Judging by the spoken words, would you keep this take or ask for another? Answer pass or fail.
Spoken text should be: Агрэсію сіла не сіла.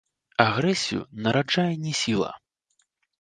fail